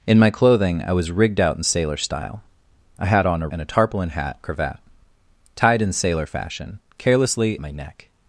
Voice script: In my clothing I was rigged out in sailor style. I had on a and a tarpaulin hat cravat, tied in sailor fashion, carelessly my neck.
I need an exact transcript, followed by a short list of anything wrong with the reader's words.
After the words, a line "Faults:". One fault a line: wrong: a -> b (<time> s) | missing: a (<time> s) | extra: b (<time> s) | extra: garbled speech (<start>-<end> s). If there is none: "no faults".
In my clothing I was rigged out in sailor style. I had on a and a tarpaulin hat cravat, tied in sailor fashion, carelessly my neck.
Faults:
no faults